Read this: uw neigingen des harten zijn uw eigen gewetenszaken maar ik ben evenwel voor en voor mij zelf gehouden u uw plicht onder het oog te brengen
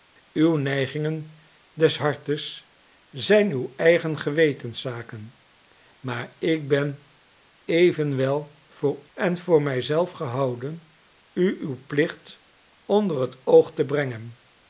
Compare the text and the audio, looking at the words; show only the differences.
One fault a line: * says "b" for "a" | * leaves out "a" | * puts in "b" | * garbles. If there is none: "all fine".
all fine